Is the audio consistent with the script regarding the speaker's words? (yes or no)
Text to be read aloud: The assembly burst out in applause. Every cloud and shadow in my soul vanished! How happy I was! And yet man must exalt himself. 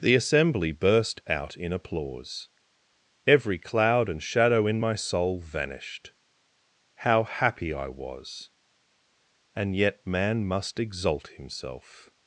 yes